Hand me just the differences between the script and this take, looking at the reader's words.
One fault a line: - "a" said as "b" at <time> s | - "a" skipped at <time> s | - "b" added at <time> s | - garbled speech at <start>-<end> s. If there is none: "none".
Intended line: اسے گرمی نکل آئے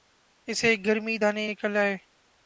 - "دانے" added at 1.2 s